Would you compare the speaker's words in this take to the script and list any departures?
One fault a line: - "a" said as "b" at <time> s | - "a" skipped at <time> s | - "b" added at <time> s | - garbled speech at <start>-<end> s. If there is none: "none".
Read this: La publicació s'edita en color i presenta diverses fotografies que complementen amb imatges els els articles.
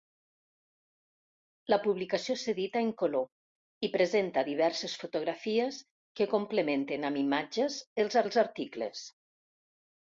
none